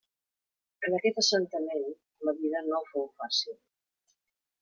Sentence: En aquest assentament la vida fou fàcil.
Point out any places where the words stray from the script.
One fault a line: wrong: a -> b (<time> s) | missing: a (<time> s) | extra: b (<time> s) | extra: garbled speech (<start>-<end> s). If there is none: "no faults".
extra: no (2.7 s)